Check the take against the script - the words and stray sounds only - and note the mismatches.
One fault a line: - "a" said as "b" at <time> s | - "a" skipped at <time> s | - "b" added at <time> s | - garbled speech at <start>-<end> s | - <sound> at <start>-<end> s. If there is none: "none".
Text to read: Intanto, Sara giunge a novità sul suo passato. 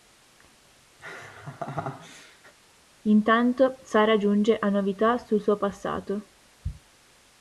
- laugh at 1.0-2.5 s